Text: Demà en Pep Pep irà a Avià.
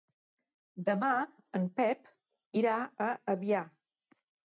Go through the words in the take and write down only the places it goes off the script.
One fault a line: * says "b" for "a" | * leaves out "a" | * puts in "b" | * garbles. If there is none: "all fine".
* leaves out "Pep"